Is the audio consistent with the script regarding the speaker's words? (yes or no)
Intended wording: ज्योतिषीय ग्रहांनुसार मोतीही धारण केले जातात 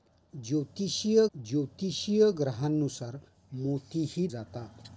no